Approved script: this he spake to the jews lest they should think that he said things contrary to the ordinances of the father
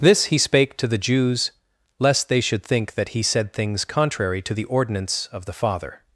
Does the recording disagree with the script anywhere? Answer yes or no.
yes